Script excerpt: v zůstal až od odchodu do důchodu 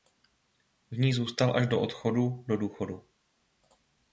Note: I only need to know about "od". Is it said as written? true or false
false